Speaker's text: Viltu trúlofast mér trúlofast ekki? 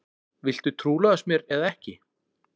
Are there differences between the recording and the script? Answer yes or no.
yes